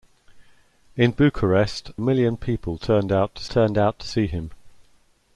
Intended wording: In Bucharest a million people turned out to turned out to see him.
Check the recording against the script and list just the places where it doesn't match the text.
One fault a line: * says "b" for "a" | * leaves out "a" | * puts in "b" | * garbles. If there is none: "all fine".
all fine